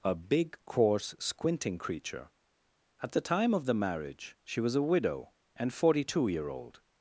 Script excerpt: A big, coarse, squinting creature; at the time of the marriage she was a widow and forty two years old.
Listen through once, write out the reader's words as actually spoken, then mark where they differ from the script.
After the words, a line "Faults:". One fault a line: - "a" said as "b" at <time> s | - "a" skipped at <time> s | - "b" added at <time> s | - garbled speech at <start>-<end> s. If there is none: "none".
A big, coarse, squinting creature; at the time of the marriage she was a widow and forty two year old.
Faults:
- "years" said as "year" at 6.3 s